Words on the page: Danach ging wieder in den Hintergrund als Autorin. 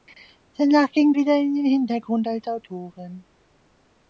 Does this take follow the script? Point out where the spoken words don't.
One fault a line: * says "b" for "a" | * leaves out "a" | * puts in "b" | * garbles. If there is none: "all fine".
all fine